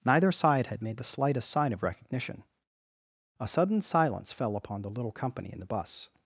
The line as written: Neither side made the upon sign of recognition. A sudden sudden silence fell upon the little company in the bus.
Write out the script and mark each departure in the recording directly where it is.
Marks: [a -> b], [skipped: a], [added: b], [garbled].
Neither side [added: had] made the [upon -> slightest] sign of recognition. A sudden [skipped: sudden] silence fell upon the little company in the bus.